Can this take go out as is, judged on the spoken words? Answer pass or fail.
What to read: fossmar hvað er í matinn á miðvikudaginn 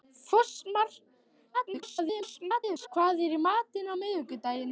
fail